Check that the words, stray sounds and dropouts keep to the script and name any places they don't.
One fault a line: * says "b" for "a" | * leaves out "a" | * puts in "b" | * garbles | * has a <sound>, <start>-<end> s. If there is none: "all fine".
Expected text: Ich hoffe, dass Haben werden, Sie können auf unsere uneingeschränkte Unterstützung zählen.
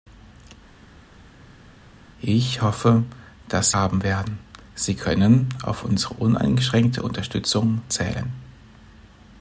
all fine